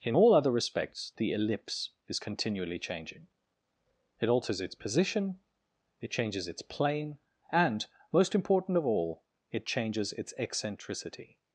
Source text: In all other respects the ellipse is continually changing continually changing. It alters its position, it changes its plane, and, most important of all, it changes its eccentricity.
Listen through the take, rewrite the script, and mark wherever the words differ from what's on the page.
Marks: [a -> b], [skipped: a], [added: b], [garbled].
In all other respects the ellipse is continually changing [skipped: continually changing.] It alters its position, it changes its plane, and, most important of all, it changes its eccentricity.